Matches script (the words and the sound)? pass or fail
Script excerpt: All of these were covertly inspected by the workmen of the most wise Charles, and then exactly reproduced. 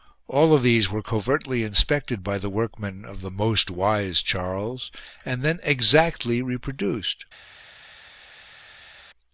pass